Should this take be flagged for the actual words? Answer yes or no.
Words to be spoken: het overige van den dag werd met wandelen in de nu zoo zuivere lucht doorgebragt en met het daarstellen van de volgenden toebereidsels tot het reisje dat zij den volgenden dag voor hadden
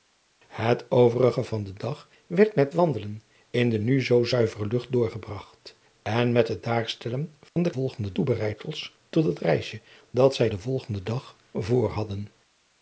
no